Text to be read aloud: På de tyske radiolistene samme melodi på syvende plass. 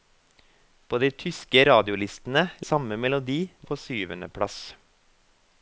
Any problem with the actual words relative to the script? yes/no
no